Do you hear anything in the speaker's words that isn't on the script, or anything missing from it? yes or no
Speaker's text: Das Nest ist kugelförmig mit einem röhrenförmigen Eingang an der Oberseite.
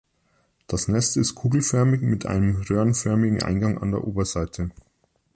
no